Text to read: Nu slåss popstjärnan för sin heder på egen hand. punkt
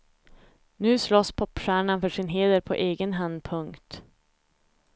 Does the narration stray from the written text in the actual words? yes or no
no